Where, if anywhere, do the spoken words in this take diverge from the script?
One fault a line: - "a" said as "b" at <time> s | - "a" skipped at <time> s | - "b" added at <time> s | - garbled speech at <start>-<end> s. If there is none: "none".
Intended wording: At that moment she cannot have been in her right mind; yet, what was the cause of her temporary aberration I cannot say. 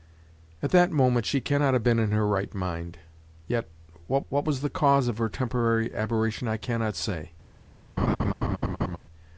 - "what" added at 4.3 s